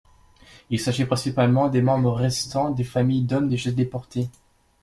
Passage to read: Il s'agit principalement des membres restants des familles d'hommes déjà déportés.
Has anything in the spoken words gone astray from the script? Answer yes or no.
no